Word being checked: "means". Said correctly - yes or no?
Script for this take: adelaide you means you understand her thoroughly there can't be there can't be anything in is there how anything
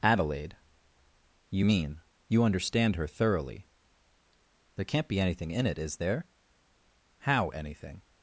no